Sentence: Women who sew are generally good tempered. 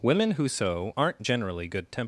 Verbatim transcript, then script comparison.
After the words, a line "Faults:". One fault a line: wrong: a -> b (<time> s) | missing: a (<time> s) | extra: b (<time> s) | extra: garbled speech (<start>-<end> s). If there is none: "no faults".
Women who sew aren't generally good tempered.
Faults:
wrong: are -> aren't (1.0 s)